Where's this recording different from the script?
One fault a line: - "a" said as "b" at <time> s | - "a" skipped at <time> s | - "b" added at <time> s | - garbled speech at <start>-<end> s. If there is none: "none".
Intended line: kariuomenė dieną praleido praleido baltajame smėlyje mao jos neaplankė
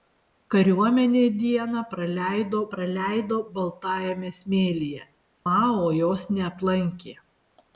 none